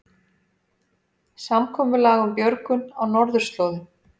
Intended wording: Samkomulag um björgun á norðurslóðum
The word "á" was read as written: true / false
true